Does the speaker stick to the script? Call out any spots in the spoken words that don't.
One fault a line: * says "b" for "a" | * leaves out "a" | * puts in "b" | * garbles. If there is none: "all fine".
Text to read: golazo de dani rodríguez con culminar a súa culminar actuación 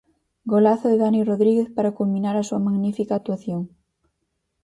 * says "para" for "con"
* says "magnífica" for "culminar"